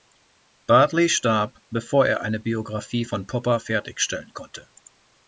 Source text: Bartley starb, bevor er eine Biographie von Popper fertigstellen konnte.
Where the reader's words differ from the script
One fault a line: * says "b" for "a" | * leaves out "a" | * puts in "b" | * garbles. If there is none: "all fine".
all fine